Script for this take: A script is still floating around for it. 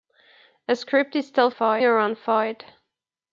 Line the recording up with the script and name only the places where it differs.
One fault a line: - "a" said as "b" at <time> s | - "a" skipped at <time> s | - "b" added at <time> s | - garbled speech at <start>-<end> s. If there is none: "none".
- "floating" said as "for" at 1.5 s